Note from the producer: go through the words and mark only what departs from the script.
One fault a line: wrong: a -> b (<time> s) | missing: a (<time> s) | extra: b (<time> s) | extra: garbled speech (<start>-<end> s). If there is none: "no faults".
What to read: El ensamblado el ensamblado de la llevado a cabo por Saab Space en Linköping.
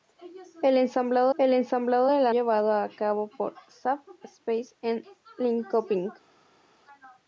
no faults